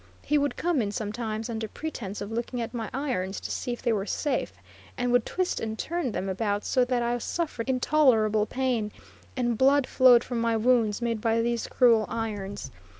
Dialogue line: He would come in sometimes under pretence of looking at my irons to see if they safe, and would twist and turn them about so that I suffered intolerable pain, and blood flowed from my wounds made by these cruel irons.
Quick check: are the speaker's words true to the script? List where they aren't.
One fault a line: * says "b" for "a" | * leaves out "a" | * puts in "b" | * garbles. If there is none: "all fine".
* puts in "were"